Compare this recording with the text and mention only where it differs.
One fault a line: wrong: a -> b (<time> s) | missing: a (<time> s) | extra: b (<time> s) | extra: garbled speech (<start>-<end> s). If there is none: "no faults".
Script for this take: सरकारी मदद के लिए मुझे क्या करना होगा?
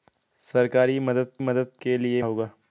extra: मदद (1.4 s)
missing: मुझे क्या करना (2.2 s)